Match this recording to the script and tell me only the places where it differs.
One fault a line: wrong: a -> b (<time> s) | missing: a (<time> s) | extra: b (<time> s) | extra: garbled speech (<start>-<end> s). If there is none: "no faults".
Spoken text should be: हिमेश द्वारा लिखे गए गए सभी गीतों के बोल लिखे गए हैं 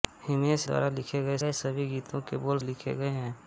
no faults